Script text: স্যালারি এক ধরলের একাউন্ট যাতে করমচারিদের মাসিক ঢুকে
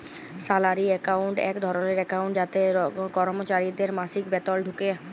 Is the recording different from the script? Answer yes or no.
yes